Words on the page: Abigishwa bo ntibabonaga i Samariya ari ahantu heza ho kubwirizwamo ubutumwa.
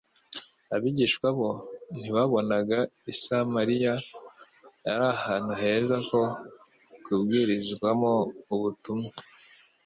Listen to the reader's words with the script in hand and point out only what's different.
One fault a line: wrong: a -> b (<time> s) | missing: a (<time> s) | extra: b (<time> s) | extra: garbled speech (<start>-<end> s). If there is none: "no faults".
no faults